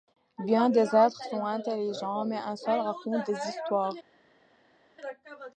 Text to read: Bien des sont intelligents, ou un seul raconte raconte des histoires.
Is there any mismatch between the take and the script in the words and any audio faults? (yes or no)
yes